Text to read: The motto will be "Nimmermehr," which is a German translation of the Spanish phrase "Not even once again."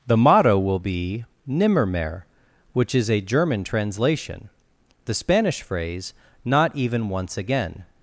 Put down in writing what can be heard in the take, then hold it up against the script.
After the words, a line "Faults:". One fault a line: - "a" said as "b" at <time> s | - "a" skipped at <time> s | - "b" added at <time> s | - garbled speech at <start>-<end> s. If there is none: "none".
The motto will be "Nimmermehr," which is a German translation the Spanish phrase "Not even once again."
Faults:
- "of" skipped at 4.5 s